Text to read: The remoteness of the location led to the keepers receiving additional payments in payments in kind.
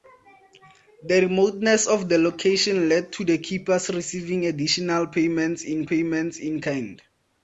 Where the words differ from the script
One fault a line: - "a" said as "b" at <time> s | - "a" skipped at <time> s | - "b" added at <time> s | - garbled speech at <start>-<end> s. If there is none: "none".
none